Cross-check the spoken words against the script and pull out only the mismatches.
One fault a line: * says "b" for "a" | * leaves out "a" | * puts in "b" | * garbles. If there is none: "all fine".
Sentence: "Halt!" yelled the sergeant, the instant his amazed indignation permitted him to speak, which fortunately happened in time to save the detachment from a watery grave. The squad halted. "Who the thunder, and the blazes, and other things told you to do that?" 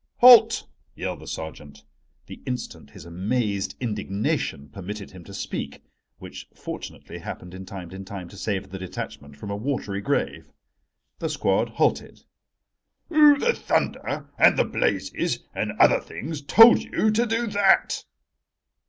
* puts in "in time"